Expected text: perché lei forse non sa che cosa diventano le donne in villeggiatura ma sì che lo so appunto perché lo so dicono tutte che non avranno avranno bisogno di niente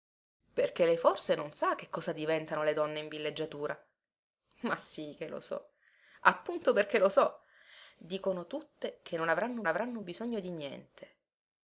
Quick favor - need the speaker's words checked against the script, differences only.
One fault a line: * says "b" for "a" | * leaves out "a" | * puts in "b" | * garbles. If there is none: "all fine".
all fine